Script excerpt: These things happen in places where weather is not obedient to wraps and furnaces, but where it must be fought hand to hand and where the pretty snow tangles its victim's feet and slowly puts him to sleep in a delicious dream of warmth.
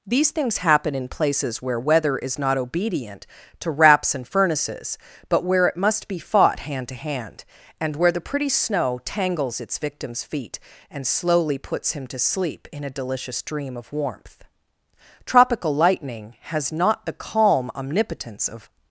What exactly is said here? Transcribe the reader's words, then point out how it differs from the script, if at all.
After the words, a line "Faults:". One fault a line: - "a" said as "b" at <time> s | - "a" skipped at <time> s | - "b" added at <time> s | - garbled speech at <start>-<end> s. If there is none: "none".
These things happen in places where weather is not obedient to wraps and furnaces, but where it must be fought hand to hand and where the pretty snow tangles its victim's feet and slowly puts him to sleep in a delicious dream of warmth. Tropical lightning has not the calm omnipotence of
Faults:
- "Tropical lightning has not the calm omnipotence of" added at 15.2 s